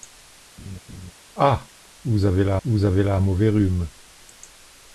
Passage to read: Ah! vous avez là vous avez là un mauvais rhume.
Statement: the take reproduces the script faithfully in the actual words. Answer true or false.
true